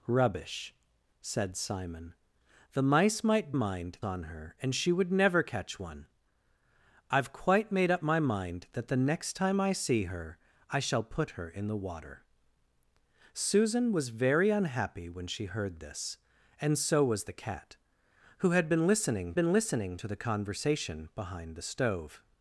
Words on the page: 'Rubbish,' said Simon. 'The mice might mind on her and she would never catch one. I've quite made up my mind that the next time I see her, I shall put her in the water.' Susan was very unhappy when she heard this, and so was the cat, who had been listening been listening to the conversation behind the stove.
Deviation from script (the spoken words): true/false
false